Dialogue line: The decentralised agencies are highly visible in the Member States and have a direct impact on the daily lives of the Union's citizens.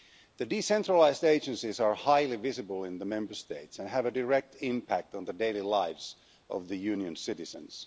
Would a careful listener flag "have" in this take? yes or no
no